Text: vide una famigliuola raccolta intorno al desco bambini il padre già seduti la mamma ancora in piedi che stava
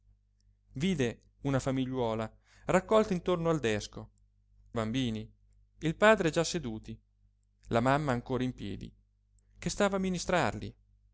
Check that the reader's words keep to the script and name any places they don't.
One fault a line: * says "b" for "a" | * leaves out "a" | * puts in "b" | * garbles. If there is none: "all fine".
all fine